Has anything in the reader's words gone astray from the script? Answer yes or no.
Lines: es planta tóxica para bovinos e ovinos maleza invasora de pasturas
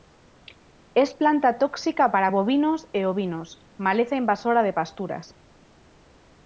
no